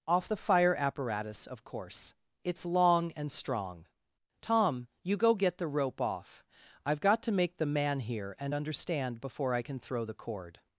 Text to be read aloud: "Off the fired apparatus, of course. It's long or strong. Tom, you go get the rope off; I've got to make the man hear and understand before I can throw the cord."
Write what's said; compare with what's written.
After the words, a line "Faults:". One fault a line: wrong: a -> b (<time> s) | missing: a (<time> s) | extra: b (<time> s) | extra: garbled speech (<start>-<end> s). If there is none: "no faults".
"Off the fire apparatus, of course. It's long and strong. Tom, you go get the rope off; I've got to make the man hear and understand before I can throw the cord."
Faults:
wrong: fired -> fire (0.4 s)
wrong: or -> and (3.1 s)